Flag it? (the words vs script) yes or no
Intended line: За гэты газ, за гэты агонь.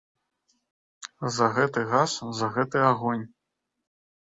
no